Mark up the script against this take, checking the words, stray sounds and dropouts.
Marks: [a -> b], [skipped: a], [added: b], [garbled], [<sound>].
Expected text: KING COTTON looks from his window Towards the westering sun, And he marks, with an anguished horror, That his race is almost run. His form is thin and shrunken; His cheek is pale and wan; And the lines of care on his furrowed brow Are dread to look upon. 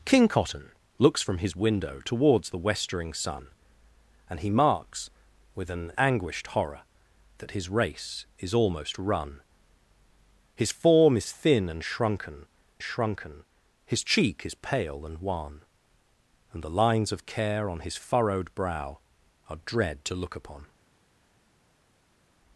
KING COTTON looks from his window Towards the westering sun, And he marks, with an anguished horror, That his race is almost run. His form is thin and shrunken; [added: shrunken] His cheek is pale and wan; And the lines of care on his furrowed brow Are dread to look upon.